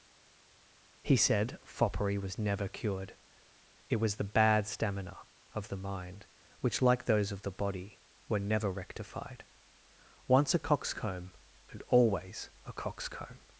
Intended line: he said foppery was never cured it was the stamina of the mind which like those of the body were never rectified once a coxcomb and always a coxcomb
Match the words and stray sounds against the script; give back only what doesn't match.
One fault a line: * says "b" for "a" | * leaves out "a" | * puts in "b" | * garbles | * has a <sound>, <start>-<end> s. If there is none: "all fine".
* puts in "bad"